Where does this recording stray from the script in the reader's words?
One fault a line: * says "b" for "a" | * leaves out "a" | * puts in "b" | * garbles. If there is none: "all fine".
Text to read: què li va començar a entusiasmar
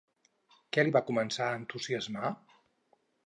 all fine